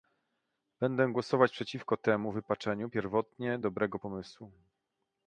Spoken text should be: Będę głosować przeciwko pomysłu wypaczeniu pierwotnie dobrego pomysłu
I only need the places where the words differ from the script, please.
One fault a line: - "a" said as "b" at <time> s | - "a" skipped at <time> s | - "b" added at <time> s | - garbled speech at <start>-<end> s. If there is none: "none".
- "pomysłu" said as "temu" at 2.0 s